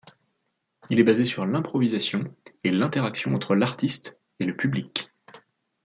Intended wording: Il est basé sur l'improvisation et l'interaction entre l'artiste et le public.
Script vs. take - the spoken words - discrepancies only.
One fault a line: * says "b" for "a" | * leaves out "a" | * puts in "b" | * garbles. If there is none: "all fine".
all fine